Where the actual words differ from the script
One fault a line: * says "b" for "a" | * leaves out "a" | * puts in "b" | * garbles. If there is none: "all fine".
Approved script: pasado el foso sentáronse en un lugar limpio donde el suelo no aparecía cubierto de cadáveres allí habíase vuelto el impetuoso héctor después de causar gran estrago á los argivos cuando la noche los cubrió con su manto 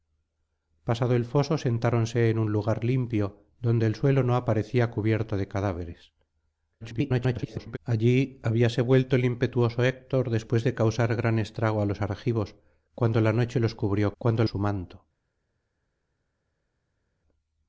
* garbles
* says "cuando" for "con"